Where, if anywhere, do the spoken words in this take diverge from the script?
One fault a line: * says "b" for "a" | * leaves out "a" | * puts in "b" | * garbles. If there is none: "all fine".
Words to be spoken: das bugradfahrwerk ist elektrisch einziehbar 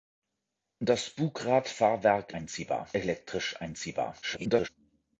* says "einziehbar" for "ist"
* garbles